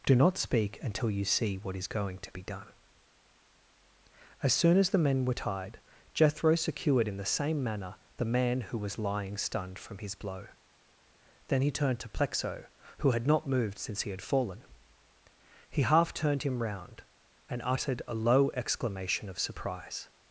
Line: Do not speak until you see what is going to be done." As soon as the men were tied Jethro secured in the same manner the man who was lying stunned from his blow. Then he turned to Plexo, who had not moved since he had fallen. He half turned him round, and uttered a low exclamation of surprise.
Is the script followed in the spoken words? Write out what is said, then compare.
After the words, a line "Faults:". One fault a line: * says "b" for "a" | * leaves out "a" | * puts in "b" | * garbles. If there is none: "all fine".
Do not speak until you see what is going to be done." As soon as the men were tied Jethro secured in the same manner the man who was lying stunned from his blow. Then he turned to Plexo, who had not moved since he had fallen. He half turned him round, and uttered a low exclamation of surprise.
Faults:
all fine